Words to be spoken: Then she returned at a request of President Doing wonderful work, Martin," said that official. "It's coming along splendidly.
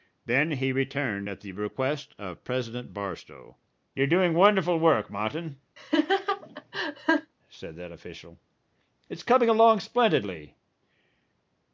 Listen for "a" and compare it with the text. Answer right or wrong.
wrong